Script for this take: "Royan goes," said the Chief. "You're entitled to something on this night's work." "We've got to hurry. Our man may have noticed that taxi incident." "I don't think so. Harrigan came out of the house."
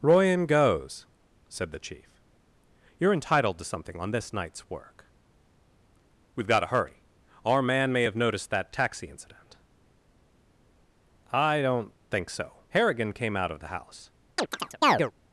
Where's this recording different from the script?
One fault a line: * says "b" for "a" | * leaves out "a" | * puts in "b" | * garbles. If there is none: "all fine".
all fine